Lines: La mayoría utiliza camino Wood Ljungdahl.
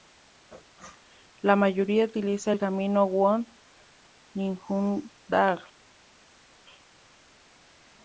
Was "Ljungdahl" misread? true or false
false